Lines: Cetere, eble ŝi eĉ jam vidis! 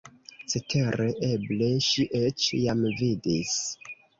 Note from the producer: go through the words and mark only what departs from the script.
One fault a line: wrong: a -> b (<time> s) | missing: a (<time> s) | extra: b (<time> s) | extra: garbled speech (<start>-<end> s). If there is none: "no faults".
no faults